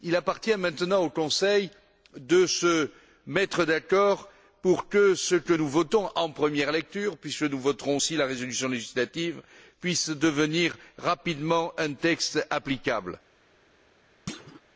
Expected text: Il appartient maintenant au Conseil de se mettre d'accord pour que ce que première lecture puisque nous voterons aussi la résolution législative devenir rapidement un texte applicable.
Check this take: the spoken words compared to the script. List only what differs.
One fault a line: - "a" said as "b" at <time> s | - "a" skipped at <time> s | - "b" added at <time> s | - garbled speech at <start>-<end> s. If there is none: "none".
- "nous votons en" added at 5.5 s
- "puisse" added at 9.8 s